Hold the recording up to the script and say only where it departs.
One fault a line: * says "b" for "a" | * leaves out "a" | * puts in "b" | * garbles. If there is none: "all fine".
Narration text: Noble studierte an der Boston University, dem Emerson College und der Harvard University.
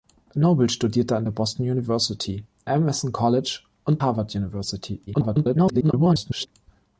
* leaves out "dem"
* leaves out "der"
* garbles